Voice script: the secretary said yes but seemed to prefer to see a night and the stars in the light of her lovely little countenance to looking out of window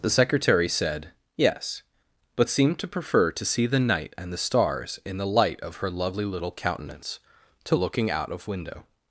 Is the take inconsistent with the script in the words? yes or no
yes